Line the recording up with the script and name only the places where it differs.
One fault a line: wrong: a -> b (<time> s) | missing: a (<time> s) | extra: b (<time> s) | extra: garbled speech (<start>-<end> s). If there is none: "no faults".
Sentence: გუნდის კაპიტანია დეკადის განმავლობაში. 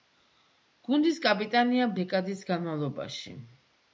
no faults